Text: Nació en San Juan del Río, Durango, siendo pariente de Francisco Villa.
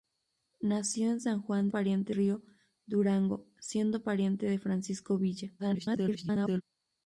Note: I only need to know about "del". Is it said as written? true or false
false